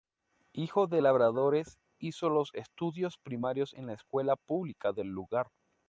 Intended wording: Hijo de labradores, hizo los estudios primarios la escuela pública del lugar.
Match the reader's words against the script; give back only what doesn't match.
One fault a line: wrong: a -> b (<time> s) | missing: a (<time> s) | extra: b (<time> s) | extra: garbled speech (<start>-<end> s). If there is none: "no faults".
extra: en (3.7 s)